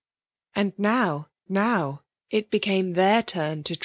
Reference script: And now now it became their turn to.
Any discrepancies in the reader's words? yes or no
no